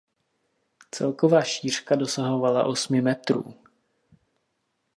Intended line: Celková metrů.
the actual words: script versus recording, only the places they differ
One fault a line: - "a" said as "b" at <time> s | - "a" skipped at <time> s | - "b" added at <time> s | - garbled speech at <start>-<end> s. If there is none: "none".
- "šířka dosahovala osmi" added at 1.4 s